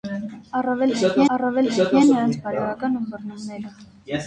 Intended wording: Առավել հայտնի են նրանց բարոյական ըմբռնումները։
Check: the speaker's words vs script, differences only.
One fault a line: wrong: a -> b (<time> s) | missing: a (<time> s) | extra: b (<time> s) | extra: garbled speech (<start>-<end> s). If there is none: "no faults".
extra: առավել հայտնի (1.3 s)